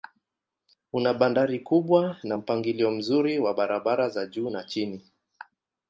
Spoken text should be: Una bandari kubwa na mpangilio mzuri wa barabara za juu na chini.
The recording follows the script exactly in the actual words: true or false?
true